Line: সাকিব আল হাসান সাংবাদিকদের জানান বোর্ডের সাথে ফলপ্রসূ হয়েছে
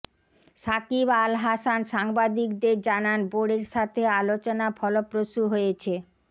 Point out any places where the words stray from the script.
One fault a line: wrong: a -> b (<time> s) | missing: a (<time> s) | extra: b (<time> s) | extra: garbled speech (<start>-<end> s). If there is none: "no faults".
extra: আলোচনা (4.2 s)